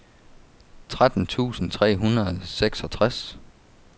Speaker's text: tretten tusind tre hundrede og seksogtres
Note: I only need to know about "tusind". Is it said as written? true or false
true